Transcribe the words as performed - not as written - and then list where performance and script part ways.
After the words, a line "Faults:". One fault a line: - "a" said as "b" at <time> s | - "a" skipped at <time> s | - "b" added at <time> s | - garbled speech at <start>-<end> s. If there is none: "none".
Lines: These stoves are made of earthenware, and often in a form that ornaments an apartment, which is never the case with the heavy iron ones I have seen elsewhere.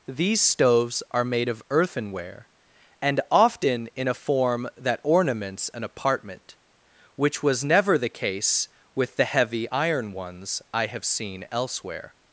These stoves are made of earthenware, and often in a form that ornaments an apartment, which was never the case with the heavy iron ones I have seen elsewhere.
Faults:
- "is" said as "was" at 7.4 s